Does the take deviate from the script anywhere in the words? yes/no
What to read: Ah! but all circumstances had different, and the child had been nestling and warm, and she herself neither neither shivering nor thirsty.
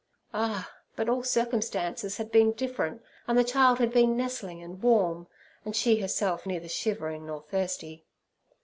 yes